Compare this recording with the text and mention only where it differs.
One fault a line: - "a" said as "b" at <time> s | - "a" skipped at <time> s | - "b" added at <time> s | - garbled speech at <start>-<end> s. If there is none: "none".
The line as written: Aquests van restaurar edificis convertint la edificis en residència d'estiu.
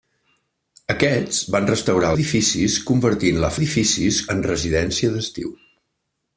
none